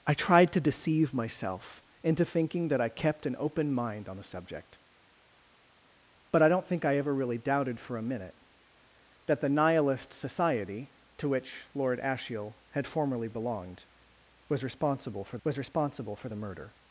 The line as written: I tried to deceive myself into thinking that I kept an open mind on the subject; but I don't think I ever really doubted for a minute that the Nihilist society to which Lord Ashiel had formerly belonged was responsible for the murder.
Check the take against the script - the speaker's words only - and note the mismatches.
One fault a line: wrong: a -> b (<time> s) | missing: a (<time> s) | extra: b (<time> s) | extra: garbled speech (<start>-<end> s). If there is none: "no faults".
extra: was responsible for (15.4 s)